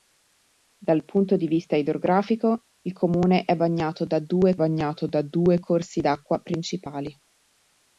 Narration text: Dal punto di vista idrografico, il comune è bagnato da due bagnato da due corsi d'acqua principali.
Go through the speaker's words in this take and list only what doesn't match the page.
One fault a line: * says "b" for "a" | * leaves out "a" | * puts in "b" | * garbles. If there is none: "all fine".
all fine